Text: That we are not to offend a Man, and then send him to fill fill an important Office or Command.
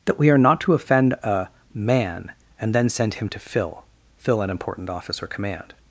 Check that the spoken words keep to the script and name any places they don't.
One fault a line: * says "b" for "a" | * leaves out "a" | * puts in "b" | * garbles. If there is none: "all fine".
all fine